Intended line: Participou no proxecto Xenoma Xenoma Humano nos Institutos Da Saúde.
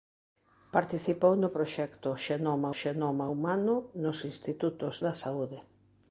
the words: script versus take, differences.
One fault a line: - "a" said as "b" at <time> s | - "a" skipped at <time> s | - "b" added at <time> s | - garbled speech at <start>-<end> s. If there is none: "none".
none